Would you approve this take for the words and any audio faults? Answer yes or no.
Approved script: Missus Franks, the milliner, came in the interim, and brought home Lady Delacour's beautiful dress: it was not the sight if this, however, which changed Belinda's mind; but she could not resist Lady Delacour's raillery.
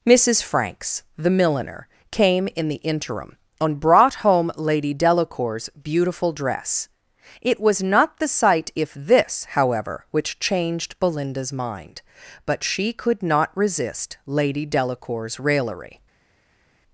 yes